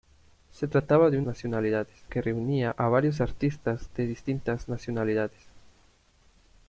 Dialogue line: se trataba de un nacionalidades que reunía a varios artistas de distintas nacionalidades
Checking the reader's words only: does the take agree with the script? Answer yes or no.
yes